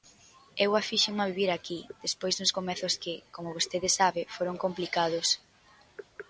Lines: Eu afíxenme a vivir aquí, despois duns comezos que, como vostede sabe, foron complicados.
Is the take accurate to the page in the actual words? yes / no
yes